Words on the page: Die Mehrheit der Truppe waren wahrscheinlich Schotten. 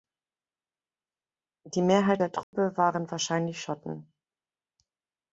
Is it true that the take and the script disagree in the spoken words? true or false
false